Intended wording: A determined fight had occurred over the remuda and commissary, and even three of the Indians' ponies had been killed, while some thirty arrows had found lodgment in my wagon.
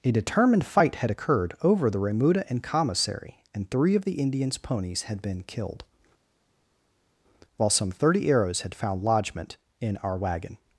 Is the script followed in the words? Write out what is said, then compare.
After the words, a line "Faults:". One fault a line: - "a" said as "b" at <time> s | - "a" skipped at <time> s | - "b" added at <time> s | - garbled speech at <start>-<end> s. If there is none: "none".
A determined fight had occurred over the remuda and commissary, and three of the Indians' ponies had been killed, while some thirty arrows had found lodgment in our wagon.
Faults:
- "even" skipped at 3.7 s
- "my" said as "our" at 10.0 s